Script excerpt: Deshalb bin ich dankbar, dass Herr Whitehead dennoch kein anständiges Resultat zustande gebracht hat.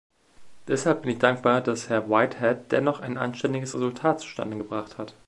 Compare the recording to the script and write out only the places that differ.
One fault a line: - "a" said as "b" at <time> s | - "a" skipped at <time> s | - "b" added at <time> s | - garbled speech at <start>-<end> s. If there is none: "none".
- "kein" said as "ein" at 3.0 s